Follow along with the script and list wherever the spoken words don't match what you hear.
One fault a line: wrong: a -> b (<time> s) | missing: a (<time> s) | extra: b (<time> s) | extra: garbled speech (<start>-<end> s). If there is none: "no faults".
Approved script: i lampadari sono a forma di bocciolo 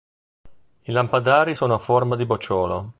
no faults